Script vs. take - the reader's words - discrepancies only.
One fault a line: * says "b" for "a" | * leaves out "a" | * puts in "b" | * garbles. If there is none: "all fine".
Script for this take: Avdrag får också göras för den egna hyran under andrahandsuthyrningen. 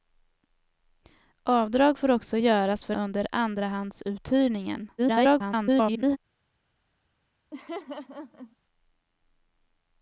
* leaves out "den egna hyran"
* garbles